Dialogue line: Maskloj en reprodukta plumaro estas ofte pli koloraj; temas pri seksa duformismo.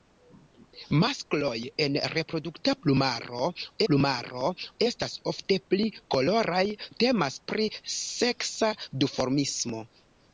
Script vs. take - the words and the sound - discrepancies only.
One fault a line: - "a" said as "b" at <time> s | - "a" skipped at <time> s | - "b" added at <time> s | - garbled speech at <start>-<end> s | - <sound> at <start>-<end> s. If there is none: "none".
- "plumaro" added at 3.9 s